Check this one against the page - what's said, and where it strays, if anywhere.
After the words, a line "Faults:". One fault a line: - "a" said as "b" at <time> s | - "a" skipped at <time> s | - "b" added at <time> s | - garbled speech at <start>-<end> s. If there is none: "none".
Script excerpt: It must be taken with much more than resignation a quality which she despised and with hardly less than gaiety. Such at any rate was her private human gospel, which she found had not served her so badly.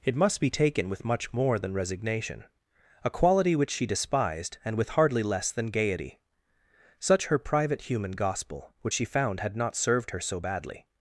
It must be taken with much more than resignation a quality which she despised and with hardly less than gaiety. Such her private human gospel, which she found had not served her so badly.
Faults:
- "at any rate was" skipped at 7.3 s